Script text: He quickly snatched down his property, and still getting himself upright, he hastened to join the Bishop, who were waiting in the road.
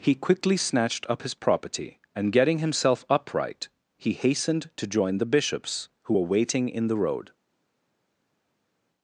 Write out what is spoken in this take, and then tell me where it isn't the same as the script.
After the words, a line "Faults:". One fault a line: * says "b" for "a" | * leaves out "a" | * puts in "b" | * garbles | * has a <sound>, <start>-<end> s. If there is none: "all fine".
He quickly snatched up his property, and getting himself upright, he hastened to join the Bishops, who were waiting in the road.
Faults:
* says "up" for "down"
* leaves out "still"
* says "Bishops" for "Bishop"